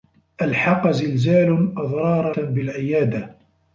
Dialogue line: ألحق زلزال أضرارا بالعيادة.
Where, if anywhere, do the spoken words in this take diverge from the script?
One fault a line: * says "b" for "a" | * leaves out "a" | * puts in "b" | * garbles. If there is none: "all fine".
all fine